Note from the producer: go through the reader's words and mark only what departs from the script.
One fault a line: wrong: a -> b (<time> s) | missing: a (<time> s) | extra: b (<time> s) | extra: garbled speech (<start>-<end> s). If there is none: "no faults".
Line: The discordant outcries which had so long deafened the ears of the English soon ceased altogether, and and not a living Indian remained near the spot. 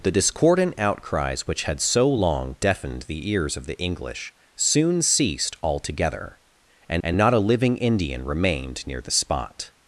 no faults